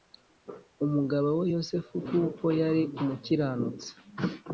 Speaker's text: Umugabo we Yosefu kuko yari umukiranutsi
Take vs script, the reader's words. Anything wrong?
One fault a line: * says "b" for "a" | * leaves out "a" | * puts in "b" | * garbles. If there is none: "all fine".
all fine